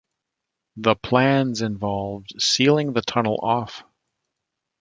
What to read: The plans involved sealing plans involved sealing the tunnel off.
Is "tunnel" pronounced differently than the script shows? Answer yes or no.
no